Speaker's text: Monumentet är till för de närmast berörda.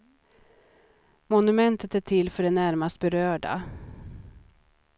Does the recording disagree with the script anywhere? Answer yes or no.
no